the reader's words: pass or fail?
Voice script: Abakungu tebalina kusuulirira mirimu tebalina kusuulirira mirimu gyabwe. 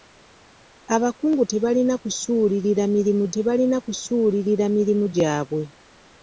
pass